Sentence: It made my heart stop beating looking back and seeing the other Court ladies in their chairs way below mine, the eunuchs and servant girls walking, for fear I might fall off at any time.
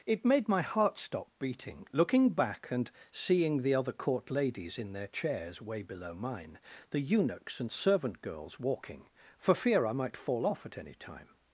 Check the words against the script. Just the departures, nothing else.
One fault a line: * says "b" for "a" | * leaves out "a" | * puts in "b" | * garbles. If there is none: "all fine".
all fine